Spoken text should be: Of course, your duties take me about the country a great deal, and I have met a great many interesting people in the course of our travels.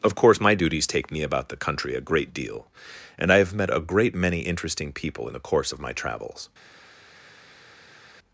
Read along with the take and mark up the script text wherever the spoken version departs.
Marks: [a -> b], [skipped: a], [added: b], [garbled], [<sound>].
Of course, [your -> my] duties take me about the country a great deal, and I have met a great many interesting people in the course of [our -> my] travels.